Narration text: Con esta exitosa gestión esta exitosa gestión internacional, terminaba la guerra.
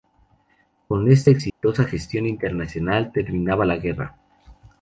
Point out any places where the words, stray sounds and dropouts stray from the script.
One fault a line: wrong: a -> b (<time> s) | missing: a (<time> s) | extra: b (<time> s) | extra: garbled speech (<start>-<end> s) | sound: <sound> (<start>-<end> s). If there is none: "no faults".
sound: dropout (1.5-1.6 s)
missing: esta exitosa gestión (2.3 s)